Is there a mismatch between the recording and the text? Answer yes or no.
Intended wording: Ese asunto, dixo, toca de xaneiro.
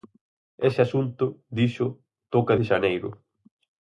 no